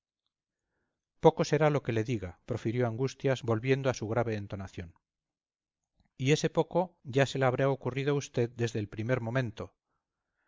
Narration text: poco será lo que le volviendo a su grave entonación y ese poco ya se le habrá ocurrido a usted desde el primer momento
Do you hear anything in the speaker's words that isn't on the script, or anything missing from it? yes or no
yes